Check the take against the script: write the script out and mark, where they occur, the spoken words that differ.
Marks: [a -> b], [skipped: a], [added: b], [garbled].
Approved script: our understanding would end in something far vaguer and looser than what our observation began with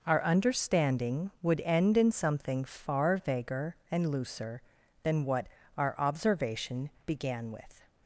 our understanding would end in something far vaguer and looser than what our observation began with